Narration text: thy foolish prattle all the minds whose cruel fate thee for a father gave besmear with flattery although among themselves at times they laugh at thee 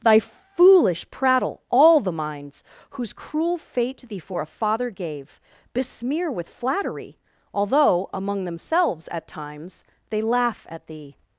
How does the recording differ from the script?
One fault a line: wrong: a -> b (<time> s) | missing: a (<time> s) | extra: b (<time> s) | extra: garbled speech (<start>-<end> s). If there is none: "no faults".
no faults